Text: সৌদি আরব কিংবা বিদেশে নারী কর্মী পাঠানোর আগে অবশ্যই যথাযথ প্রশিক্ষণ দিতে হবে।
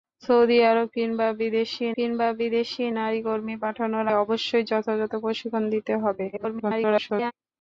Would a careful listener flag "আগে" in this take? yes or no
yes